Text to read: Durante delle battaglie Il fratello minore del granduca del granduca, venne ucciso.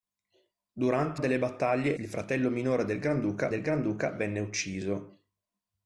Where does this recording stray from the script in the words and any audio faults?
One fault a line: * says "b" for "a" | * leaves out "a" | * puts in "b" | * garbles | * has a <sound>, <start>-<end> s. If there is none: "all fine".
all fine